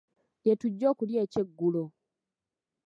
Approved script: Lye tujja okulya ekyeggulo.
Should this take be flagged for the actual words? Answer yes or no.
no